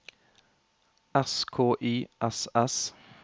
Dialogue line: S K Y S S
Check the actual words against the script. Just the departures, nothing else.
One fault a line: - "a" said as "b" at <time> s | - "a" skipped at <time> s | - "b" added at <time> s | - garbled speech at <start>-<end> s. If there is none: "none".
none